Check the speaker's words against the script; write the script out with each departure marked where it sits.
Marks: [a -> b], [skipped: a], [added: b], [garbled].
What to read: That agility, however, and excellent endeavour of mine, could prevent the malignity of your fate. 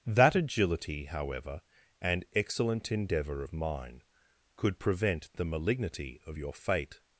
That agility, however, and excellent endeavour of mine, could prevent the malignity of your fate.